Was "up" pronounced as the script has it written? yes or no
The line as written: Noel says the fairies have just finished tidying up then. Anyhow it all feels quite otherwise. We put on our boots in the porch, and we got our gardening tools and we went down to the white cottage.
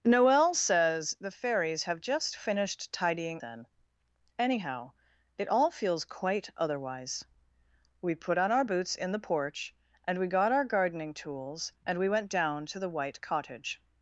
no